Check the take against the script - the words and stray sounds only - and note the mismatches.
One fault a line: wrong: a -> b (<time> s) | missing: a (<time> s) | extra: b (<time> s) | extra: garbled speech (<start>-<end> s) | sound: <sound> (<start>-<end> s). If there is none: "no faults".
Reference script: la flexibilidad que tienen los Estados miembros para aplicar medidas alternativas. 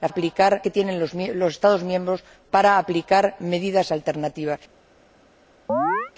wrong: flexibilidad -> aplicar (0.1 s)
sound: chirp (5.7-6.1 s)